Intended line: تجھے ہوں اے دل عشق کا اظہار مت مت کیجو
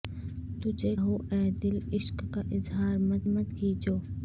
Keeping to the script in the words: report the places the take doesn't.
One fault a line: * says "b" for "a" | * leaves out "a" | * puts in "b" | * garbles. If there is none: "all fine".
all fine